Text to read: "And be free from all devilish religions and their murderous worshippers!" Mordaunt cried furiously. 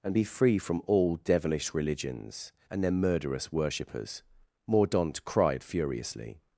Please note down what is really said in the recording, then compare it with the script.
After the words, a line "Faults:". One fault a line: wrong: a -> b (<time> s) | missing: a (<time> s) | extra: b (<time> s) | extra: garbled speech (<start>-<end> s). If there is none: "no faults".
"And be free from all devilish religions and their murderous worshippers!" Mordaunt cried furiously.
Faults:
no faults